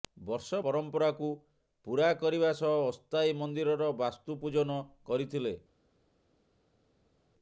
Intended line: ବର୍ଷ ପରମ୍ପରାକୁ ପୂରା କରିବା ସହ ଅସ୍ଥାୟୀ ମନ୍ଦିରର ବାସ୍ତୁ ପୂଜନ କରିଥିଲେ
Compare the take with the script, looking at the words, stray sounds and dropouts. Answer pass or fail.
pass